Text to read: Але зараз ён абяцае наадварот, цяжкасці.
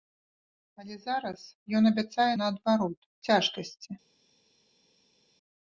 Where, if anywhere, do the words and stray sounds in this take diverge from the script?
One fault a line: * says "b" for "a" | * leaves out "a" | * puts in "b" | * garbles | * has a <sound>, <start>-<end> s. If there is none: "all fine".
all fine